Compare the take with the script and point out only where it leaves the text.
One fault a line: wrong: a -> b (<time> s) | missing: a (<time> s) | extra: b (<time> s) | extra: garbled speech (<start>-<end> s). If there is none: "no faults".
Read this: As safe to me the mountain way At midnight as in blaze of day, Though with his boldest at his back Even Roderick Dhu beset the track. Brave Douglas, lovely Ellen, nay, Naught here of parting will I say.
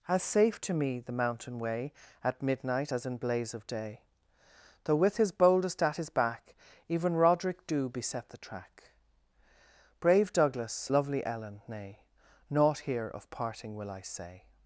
no faults